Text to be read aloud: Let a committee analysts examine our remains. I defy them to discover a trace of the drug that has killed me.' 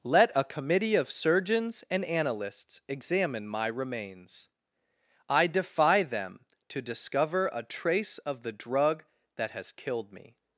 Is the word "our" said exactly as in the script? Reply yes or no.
no